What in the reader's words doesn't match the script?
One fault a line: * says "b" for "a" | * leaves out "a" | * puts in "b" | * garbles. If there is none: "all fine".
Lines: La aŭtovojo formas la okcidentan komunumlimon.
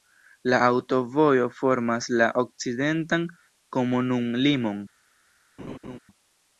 all fine